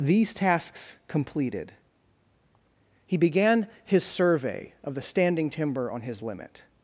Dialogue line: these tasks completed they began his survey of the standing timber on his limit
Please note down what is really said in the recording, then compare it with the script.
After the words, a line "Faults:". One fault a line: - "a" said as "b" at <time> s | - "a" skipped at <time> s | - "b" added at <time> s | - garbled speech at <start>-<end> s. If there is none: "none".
these tasks completed he began his survey of the standing timber on his limit
Faults:
- "they" said as "he" at 3.0 s